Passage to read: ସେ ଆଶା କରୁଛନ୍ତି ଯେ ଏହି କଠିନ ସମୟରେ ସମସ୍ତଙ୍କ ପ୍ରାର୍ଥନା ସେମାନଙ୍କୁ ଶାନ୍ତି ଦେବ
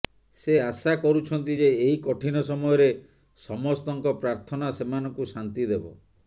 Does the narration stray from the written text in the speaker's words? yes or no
no